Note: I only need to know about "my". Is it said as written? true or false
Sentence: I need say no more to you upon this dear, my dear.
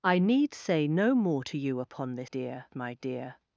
true